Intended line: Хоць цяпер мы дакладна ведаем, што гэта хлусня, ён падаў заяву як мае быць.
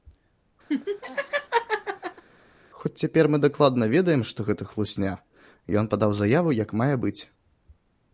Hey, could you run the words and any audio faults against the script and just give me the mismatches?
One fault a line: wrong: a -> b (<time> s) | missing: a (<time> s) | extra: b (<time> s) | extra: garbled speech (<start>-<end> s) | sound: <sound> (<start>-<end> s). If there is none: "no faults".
sound: laugh (0.7-2.2 s)